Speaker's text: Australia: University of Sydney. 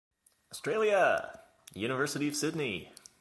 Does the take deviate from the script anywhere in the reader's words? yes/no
no